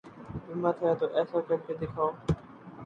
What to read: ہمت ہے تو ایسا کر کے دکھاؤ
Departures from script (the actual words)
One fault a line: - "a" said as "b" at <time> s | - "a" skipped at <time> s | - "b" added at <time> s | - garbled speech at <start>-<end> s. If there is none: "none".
none